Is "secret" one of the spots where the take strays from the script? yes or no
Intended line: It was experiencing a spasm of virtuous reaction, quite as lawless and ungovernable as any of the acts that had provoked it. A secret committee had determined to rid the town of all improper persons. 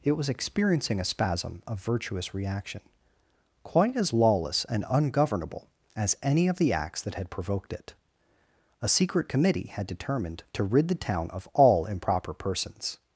no